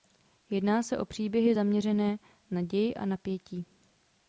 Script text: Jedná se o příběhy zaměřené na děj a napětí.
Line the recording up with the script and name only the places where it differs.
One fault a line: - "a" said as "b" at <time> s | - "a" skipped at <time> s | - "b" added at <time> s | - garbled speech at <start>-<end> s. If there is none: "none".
none